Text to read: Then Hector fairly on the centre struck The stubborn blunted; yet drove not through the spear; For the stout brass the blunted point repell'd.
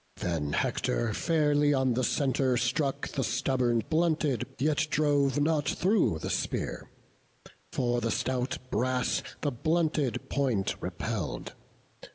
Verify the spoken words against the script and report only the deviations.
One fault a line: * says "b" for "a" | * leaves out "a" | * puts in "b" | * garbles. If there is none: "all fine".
all fine